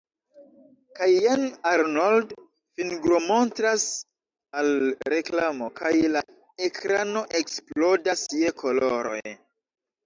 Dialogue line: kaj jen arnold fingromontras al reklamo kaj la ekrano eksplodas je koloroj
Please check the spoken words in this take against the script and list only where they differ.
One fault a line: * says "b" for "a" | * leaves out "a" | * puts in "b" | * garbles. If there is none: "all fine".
all fine